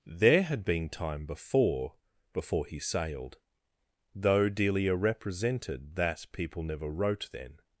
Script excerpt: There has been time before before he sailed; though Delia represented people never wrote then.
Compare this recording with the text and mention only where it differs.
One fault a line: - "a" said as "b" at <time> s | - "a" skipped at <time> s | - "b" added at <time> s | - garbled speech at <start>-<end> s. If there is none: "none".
- "has" said as "had" at 0.4 s
- "that" added at 6.0 s